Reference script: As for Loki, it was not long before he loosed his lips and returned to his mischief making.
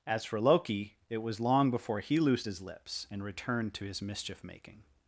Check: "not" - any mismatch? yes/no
yes